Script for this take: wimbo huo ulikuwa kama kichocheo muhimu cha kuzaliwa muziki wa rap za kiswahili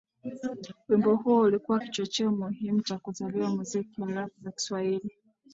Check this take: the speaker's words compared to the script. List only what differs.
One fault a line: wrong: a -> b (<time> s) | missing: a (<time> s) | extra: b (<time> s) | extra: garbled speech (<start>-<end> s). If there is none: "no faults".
missing: kama (1.8 s)